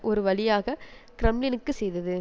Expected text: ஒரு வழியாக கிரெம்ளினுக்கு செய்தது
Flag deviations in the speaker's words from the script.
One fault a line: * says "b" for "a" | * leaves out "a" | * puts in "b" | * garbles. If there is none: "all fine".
all fine